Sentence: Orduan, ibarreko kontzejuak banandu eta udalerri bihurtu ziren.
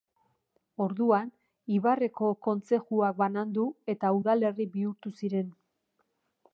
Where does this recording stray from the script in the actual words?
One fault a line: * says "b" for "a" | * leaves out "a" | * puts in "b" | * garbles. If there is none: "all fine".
all fine